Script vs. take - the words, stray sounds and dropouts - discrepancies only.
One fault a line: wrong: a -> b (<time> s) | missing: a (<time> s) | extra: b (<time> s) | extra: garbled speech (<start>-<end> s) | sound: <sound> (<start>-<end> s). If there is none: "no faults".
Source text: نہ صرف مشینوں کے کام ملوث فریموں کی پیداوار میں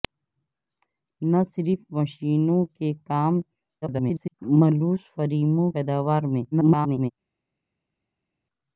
extra: garbled speech (3.8-4.3 s)
missing: کی (5.7 s)
extra: garbled speech (6.5-7.1 s)